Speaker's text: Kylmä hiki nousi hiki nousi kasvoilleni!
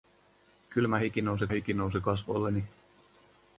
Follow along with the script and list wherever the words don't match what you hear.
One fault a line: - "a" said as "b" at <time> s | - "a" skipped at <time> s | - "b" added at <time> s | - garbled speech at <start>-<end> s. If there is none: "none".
none